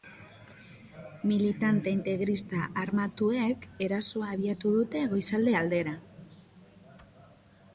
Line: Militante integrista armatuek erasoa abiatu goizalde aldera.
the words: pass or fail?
fail